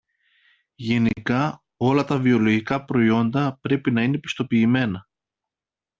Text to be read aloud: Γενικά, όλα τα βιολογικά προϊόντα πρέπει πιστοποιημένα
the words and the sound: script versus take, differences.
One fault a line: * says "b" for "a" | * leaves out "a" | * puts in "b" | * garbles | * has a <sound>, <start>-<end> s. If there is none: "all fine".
* puts in "να είναι"